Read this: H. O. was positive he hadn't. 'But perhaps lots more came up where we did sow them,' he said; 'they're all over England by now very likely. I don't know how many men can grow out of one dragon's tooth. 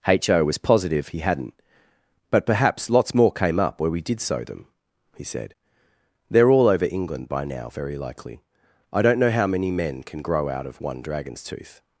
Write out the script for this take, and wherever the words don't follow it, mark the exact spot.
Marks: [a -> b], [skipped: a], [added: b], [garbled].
H. O. was positive he hadn't. 'But perhaps lots more came up where we did sow them,' he said; 'they're all over England by now very likely. I don't know how many men can grow out of one dragon's tooth.